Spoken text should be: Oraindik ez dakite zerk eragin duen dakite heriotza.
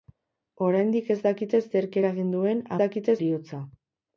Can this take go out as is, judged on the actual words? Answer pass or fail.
pass